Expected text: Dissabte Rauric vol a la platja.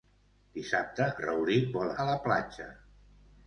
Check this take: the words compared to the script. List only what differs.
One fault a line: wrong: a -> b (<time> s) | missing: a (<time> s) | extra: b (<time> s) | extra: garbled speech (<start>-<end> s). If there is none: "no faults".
no faults